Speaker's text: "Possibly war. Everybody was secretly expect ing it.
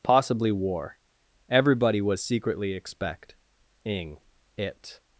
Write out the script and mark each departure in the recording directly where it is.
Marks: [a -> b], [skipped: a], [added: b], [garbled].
"Possibly war. Everybody was secretly expect ing it.